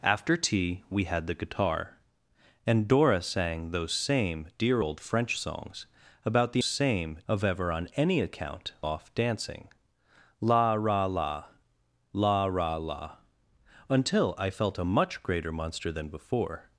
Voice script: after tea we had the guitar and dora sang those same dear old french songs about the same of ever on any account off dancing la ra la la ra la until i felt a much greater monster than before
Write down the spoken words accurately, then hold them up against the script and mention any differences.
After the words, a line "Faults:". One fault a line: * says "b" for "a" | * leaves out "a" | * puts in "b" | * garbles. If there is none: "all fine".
after tea we had the guitar and dora sang those same dear old french songs about the same of ever on any account off dancing la ra la la ra la until i felt a much greater monster than before
Faults:
all fine